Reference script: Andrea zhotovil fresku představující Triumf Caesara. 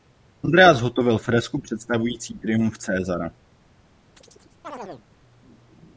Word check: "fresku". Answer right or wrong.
right